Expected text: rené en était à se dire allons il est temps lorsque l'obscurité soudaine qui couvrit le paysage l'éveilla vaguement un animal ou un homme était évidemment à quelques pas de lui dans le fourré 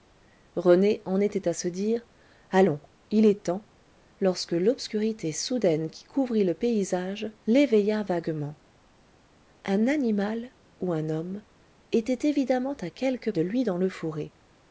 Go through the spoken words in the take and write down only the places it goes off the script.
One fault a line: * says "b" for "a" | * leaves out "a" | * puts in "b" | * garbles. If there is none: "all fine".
* leaves out "pas"